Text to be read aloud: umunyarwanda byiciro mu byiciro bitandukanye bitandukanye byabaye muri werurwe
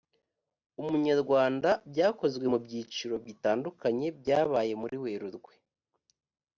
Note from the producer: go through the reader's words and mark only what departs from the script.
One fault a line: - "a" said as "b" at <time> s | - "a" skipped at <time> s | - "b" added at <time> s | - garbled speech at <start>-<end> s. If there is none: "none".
- "byiciro" said as "byakozwe" at 1.9 s
- "bitandukanye" skipped at 4.1 s